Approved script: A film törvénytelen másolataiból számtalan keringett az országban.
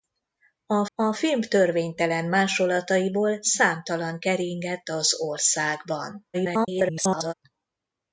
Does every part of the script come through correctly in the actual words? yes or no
no